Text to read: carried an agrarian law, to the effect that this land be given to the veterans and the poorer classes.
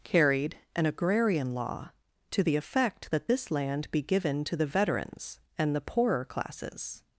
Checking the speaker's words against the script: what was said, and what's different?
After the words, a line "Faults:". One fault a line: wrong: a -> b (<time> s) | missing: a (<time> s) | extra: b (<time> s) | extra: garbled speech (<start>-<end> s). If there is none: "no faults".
carried an agrarian law, to the effect that this land be given to the veterans and the poorer classes.
Faults:
no faults